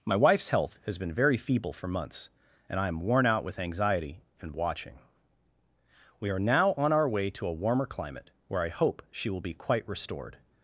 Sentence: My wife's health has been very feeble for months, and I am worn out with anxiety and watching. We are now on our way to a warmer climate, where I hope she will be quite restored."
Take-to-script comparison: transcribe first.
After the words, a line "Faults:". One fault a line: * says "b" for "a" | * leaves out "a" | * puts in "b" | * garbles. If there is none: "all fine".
My wife's health has been very feeble for months, and I am worn out with anxiety and watching. We are now on our way to a warmer climate, where I hope she will be quite restored."
Faults:
all fine